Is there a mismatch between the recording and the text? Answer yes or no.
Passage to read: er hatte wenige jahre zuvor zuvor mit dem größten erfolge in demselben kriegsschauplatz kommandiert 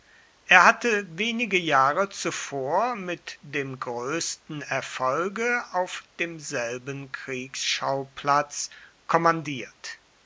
yes